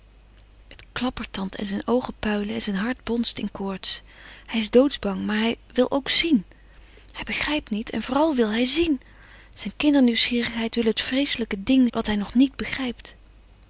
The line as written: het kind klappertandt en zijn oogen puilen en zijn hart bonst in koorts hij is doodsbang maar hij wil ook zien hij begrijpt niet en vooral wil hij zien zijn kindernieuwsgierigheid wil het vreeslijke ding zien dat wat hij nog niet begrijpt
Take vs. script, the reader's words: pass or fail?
fail